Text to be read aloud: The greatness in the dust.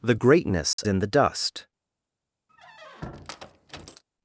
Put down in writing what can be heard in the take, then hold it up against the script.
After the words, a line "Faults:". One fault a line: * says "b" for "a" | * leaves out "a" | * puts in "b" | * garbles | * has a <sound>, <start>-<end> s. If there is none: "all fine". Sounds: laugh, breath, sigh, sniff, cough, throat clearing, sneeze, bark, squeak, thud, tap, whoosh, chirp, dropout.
The greatness in the dust.
Faults:
* has a dropout, 0.7-0.8 s
* has a squeak, 2.5-4.0 s